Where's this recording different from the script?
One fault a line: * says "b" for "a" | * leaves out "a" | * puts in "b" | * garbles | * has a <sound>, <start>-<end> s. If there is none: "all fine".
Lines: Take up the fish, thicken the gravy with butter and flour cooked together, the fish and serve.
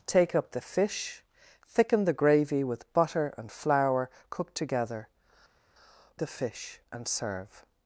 all fine